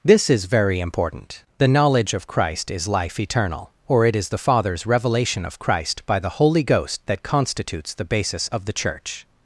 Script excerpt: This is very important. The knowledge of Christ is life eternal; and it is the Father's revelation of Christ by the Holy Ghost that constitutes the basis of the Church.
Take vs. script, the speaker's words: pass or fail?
fail